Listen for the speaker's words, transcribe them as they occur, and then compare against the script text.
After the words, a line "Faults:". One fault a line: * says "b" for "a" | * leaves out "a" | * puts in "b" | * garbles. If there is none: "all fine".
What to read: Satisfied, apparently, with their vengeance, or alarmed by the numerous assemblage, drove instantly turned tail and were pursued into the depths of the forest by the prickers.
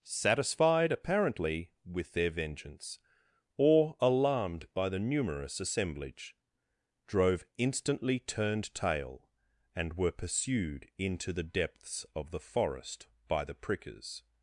Satisfied, apparently, with their vengeance, or alarmed by the numerous assemblage, drove instantly turned tail and were pursued into the depths of the forest by the prickers.
Faults:
all fine